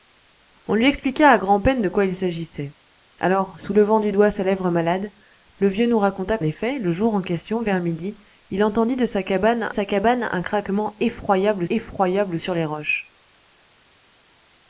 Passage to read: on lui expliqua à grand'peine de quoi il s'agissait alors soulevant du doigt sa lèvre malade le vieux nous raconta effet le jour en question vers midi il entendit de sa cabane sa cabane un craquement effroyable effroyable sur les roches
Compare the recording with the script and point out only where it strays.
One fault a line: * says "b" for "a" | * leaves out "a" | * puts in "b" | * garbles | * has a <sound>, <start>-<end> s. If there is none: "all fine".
all fine